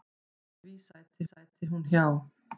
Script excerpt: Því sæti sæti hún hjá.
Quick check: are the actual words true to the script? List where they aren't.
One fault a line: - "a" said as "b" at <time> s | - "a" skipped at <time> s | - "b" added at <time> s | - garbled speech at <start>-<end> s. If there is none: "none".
none